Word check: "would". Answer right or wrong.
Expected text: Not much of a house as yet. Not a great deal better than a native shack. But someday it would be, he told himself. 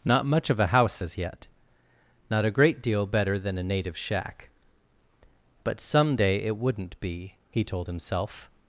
wrong